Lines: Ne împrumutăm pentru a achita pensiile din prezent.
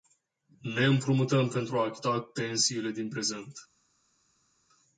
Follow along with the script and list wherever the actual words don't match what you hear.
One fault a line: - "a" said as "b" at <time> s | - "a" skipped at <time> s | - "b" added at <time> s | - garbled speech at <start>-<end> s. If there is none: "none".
none